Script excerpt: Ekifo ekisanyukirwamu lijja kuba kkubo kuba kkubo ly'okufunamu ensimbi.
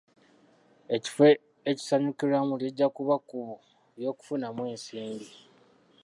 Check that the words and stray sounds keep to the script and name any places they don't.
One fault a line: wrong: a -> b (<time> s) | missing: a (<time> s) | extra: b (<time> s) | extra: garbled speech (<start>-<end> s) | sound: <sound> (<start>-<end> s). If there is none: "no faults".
missing: kuba kkubo (3.6 s)